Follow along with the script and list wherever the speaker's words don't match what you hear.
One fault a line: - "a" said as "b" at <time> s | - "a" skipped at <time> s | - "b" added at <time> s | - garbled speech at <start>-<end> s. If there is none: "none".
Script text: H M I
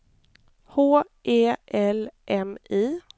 - "E L" added at 1.2 s